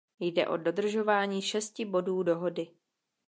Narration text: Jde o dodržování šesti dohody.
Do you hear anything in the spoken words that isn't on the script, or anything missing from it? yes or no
yes